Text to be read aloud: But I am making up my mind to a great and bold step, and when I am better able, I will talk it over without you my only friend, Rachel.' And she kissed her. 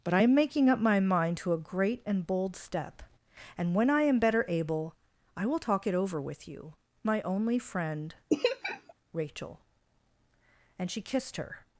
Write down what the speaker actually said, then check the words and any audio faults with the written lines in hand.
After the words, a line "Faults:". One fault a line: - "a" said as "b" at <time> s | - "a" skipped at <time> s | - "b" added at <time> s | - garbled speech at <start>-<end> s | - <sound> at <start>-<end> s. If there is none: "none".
But I am making up my mind to a great and bold step, and when I am better able, I will talk it over with you my only friend, Rachel.' And she kissed her.
Faults:
- "without" said as "with" at 6.2 s
- laugh at 8.3-8.9 s